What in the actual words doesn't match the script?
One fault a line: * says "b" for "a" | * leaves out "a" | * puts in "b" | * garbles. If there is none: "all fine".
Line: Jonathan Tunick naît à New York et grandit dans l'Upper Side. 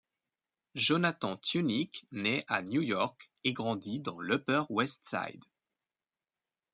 * puts in "West"